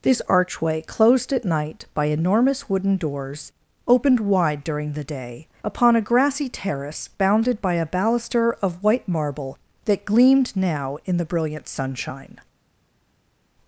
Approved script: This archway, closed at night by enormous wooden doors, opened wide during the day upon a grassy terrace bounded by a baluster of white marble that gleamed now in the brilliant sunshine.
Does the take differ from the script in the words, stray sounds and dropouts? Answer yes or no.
no